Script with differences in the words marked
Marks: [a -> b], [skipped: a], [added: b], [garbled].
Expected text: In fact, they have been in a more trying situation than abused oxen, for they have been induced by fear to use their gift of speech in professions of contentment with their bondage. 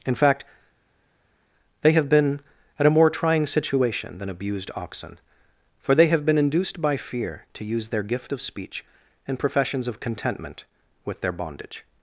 In fact, they have been [in -> at] a more trying situation than abused oxen, for they have been induced by fear to use their gift of speech in professions of contentment with their bondage.